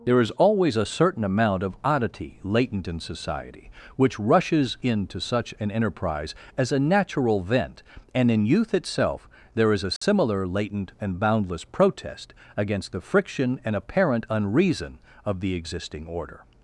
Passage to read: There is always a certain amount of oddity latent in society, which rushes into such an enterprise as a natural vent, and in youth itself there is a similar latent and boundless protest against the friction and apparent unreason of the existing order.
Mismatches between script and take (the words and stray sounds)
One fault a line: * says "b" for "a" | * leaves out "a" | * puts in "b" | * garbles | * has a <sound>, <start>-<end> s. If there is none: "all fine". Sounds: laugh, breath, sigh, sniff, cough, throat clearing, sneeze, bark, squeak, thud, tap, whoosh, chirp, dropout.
* has a dropout, 10.0-10.0 s